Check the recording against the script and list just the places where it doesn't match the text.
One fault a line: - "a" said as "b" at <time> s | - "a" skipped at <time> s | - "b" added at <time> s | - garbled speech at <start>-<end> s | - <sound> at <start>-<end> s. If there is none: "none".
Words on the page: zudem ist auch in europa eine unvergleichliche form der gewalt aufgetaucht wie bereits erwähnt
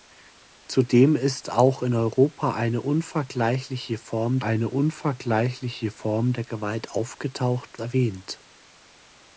- "eine unvergleichliche form" added at 4.4 s
- "wie bereits" skipped at 7.8 s